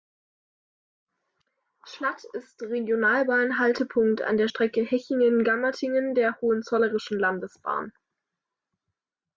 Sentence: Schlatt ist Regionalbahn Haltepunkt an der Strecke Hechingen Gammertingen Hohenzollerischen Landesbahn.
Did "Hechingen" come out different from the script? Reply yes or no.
no